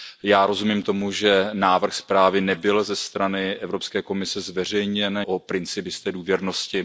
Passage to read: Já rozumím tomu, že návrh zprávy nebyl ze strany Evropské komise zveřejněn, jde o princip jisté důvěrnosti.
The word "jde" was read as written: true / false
false